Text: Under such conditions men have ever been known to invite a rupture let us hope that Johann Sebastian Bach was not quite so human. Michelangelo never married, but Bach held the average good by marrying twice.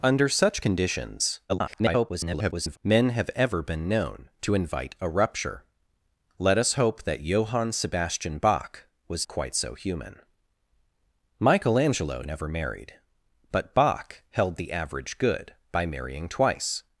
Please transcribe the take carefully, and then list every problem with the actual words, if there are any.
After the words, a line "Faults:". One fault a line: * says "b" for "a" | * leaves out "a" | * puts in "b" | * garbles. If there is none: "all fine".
Under such conditions [garbled] men have ever been known to invite a rupture let us hope that Johann Sebastian Bach was quite so human. Michelangelo never married, but Bach held the average good by marrying twice.
Faults:
* garbles
* leaves out "not"